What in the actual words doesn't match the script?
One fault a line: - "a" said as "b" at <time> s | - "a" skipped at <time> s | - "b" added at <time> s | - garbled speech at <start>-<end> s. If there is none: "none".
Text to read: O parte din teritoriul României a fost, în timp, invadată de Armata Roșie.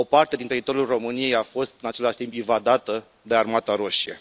- "același" added at 1.9 s